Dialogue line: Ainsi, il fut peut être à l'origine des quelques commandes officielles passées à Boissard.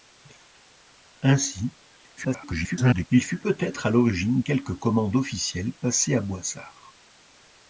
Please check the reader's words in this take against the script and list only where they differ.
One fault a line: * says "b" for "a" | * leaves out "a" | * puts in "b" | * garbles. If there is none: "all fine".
* garbles
* leaves out "des"